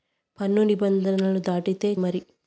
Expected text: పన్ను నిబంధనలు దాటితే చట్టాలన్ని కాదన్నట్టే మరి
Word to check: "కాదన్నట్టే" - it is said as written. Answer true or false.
false